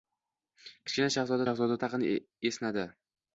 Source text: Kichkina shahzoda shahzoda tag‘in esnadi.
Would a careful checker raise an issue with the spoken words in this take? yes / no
no